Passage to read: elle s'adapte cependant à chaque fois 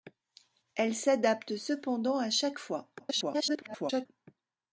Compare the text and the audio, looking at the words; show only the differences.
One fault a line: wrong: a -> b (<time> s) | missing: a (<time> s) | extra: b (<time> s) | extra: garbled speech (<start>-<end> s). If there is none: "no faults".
extra: garbled speech (3.0-4.1 s)